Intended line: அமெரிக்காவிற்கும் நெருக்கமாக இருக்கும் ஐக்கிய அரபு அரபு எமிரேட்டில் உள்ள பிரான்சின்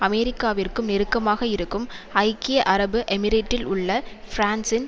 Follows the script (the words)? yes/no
no